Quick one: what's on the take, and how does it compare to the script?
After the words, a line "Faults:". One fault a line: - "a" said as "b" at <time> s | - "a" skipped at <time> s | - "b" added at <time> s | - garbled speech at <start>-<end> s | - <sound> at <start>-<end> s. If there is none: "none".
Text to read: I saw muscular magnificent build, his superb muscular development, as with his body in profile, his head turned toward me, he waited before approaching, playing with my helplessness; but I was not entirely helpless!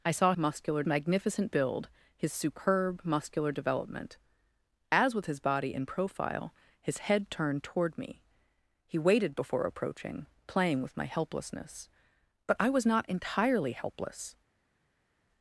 I saw muscular magnificent build, his superb muscular development, as with his body in profile, his head turned toward me, he waited before approaching, playing with my helplessness; but I was not entirely helpless!
Faults:
none